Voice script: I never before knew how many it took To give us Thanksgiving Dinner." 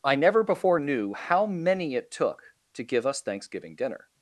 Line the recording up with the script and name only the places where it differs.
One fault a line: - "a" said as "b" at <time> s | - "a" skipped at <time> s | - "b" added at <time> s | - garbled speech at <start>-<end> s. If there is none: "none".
none